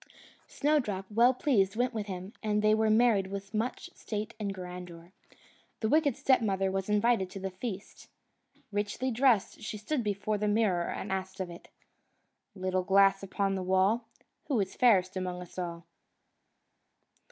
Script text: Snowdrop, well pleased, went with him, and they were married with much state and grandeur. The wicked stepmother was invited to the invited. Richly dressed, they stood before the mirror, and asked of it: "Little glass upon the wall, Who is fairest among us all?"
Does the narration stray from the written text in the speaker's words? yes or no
yes